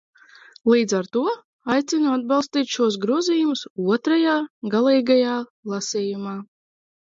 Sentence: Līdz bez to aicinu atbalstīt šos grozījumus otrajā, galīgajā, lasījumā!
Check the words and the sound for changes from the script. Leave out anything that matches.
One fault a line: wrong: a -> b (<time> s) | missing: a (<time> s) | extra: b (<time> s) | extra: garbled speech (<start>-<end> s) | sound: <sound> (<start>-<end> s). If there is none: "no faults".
wrong: bez -> ar (1.0 s)